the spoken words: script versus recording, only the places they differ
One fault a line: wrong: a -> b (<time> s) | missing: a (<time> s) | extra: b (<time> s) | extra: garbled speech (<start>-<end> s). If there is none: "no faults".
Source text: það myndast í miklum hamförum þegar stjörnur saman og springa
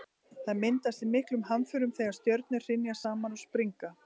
extra: hrynja (2.7 s)